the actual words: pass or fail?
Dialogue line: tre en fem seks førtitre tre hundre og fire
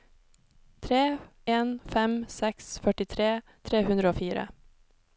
pass